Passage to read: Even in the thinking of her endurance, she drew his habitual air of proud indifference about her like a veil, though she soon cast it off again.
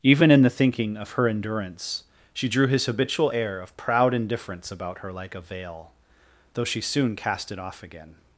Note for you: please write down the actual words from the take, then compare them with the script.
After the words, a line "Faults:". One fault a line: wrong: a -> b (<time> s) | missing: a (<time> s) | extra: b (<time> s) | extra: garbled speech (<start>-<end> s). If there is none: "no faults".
Even in the thinking of her endurance, she drew his habitual air of proud indifference about her like a veil, though she soon cast it off again.
Faults:
no faults